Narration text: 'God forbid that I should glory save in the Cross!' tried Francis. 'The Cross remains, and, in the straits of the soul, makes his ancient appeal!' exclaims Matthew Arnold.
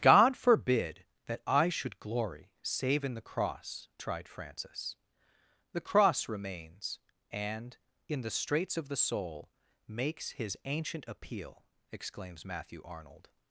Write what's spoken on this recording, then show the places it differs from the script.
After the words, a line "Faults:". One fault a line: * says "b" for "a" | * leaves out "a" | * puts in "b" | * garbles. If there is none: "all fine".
'God forbid that I should glory save in the Cross!' tried Francis. 'The Cross remains, and, in the straits of the soul, makes his ancient appeal!' exclaims Matthew Arnold.
Faults:
all fine